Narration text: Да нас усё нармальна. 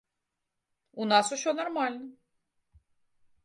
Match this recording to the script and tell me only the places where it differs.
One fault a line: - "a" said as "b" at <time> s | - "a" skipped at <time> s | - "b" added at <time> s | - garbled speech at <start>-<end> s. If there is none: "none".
- "Да" said as "У" at 0.9 s